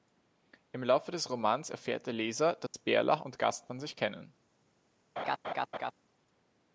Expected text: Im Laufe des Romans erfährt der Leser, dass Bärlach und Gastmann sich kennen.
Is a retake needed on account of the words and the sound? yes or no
yes